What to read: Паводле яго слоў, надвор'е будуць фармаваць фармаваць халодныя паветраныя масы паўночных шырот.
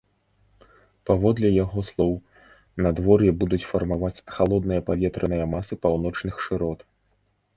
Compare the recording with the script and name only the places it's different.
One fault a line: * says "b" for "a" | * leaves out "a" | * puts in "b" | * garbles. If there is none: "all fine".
* leaves out "фармаваць"